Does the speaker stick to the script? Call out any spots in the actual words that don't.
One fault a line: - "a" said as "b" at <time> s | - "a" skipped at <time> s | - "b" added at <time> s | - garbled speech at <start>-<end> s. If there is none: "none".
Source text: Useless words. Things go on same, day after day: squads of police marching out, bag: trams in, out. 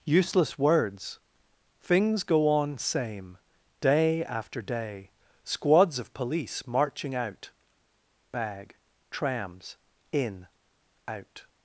none